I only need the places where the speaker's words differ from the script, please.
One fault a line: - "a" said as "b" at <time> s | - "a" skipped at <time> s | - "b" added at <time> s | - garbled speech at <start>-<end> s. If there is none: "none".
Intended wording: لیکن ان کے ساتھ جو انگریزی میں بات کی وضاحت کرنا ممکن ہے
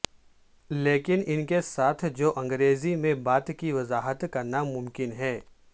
none